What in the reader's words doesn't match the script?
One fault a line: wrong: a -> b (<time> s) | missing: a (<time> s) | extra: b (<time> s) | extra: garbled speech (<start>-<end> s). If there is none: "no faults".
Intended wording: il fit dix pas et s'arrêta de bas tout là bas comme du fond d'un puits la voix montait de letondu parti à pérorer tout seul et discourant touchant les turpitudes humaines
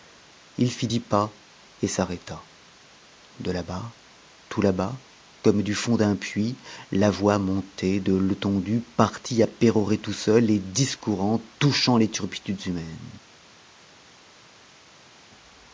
extra: là (3.5 s)